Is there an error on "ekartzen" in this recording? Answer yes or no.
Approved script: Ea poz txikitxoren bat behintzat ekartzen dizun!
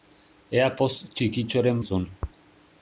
yes